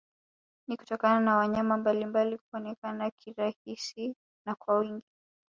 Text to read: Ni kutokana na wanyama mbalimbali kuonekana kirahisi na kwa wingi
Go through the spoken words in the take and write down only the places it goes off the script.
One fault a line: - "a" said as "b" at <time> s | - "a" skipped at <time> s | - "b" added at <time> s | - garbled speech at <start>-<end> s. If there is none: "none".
none